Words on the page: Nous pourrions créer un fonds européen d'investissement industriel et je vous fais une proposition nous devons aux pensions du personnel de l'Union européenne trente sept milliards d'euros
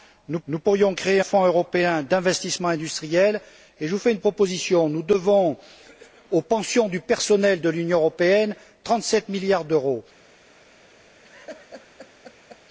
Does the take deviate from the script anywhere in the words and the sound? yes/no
yes